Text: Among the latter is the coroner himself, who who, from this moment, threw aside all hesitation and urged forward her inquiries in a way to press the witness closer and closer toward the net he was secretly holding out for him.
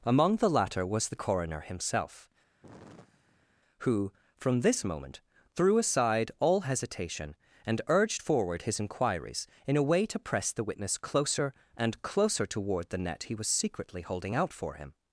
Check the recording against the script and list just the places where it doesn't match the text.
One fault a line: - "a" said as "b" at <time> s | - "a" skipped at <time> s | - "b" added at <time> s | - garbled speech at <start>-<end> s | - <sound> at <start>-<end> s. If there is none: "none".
- "is" said as "was" at 0.8 s
- sigh at 2.6-3.6 s
- "who" skipped at 4.1 s
- "her" said as "his" at 8.6 s